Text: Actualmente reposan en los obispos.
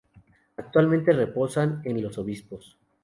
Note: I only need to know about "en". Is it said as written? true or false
true